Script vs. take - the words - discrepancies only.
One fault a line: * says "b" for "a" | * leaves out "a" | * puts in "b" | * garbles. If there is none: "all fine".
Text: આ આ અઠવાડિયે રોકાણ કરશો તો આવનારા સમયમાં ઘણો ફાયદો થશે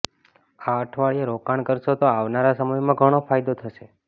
* leaves out "આ"